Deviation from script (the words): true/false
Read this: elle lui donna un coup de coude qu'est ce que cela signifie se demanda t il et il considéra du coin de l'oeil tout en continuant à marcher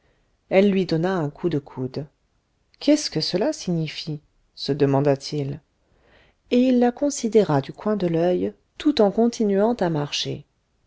true